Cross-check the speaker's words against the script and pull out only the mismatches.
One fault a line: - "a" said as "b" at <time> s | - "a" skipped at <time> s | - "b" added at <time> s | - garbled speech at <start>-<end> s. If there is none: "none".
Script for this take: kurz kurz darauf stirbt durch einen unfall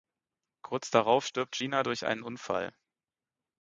- "kurz" skipped at 0.9 s
- "gina" added at 1.6 s